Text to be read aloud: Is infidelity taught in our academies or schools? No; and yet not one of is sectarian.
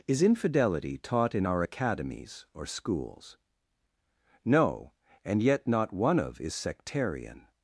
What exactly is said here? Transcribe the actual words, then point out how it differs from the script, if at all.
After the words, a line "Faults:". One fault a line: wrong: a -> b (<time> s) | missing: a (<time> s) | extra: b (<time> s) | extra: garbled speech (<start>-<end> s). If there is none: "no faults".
Is infidelity taught in our academies or schools? No; and yet not one of is sectarian.
Faults:
no faults